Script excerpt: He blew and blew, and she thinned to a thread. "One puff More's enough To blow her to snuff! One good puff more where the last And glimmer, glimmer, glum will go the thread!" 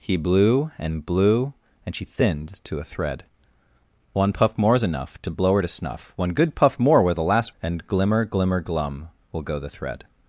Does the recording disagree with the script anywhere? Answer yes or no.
no